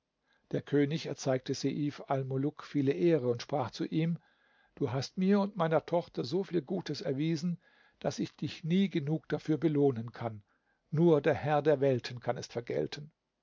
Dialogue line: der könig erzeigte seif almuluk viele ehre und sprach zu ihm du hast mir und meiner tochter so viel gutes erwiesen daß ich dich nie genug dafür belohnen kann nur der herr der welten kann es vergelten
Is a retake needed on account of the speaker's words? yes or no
no